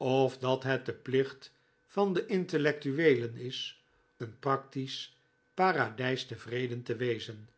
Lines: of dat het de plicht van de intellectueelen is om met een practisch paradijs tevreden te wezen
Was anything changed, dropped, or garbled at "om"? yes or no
yes